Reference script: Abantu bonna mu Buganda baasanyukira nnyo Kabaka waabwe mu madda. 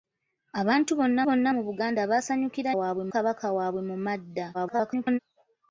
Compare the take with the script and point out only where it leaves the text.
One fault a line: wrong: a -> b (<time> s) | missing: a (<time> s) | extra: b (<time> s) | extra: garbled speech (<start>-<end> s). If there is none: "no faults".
extra: bonna (1.3 s)
wrong: nnyo -> waabwe (2.8 s)
extra: garbled speech (4.5-5.2 s)